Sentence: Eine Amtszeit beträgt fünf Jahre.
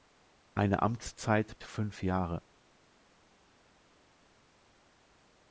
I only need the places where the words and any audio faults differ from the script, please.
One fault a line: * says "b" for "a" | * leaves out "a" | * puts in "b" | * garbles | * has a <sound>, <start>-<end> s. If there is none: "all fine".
* leaves out "beträgt"